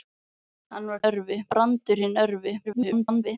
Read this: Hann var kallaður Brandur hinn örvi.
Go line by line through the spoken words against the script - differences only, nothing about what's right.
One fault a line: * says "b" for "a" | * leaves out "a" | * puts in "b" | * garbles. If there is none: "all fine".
* says "örvi" for "kallaður"
* garbles